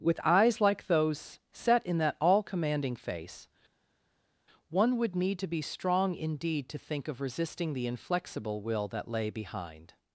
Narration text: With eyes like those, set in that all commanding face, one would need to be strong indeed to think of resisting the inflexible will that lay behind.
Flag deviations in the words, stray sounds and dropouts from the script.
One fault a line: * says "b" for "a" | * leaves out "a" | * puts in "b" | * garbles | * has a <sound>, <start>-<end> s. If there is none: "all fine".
all fine